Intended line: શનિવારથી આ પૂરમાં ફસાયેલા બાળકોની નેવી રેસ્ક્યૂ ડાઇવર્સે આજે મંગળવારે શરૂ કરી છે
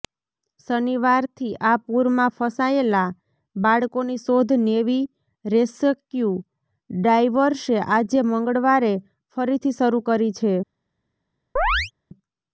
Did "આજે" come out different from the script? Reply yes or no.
no